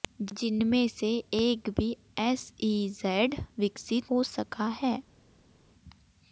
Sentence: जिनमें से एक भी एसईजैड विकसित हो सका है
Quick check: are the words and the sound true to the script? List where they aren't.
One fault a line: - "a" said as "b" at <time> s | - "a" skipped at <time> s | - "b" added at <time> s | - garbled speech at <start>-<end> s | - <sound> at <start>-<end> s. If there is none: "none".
none